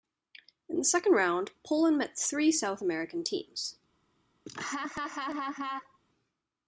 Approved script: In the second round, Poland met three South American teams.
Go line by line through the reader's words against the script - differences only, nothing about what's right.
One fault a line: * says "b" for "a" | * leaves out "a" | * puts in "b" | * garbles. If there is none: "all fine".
all fine